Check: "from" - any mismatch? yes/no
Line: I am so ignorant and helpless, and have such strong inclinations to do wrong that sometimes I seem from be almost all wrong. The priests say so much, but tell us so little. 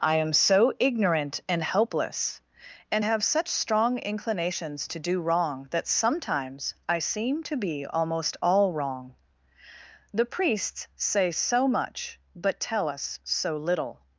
yes